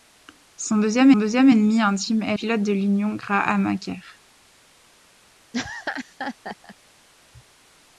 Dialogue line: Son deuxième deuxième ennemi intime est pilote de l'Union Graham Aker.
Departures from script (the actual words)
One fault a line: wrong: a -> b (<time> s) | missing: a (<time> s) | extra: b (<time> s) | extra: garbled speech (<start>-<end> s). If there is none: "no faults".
no faults